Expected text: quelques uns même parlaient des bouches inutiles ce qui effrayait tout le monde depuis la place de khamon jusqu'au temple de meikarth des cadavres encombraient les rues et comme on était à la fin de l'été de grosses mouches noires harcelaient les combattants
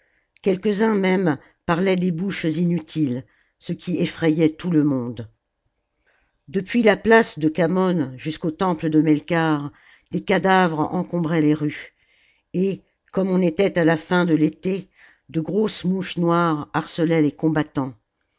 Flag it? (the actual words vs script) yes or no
no